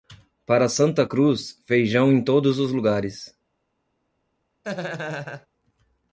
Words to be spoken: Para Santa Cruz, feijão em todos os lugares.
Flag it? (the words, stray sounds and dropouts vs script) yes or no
yes